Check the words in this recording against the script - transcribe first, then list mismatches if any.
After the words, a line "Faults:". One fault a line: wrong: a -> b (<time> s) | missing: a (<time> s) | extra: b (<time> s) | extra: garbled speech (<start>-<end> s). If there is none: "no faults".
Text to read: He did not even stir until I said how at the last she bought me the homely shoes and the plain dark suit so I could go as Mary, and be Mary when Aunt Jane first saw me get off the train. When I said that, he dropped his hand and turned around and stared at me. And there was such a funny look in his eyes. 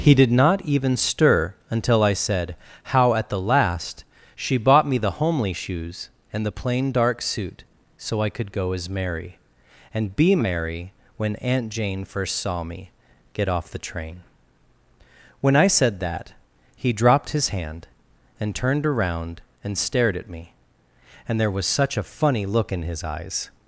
He did not even stir until I said how at the last she bought me the homely shoes and the plain dark suit so I could go as Mary, and be Mary when Aunt Jane first saw me get off the train. When I said that, he dropped his hand and turned around and stared at me. And there was such a funny look in his eyes.
Faults:
no faults